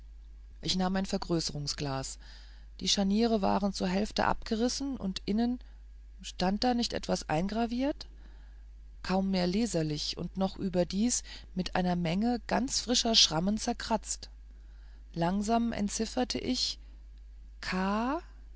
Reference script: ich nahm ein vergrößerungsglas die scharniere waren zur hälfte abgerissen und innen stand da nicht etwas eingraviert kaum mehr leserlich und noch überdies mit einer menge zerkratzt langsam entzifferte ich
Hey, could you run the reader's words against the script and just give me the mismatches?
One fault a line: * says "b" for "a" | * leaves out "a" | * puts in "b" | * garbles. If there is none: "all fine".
* puts in "ganz frischer schrammen"